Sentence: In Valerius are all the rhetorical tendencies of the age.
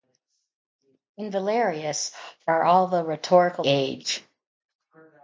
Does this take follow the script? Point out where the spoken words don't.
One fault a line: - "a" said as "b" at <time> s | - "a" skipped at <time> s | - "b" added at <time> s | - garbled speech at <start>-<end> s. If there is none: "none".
- "tendencies of the" skipped at 3.6 s